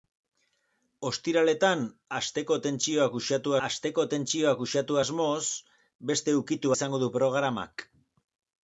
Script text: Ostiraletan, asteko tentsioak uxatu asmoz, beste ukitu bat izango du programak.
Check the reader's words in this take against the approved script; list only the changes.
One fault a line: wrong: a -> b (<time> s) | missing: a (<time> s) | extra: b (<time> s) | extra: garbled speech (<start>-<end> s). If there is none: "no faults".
extra: asteko tentsioak uxatu (3.7 s)
missing: bat (6.7 s)